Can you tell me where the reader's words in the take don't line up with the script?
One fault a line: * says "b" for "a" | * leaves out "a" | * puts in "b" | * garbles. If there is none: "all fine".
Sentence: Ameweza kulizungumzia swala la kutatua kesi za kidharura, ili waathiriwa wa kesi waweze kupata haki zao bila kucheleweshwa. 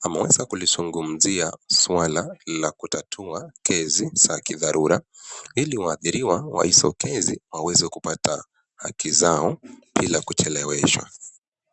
* puts in "hizo"